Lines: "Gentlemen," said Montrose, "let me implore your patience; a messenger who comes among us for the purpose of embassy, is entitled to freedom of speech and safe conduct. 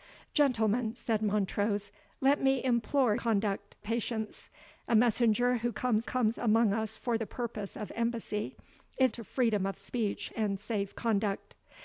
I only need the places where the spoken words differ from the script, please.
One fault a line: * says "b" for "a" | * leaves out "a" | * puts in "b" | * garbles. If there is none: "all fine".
* says "conduct" for "your"
* puts in "comes"
* leaves out "entitled"